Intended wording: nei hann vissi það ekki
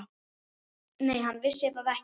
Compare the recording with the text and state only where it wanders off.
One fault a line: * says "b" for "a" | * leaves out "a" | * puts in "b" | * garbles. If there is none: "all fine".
all fine